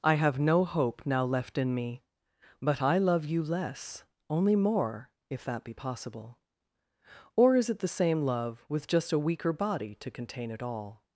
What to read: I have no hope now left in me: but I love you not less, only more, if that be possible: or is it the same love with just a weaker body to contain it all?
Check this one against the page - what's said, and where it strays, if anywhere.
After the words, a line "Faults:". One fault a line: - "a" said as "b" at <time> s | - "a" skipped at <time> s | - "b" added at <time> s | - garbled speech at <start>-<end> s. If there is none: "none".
I have no hope now left in me: but I love you less, only more, if that be possible: or is it the same love with just a weaker body to contain it all?
Faults:
- "not" skipped at 3.4 s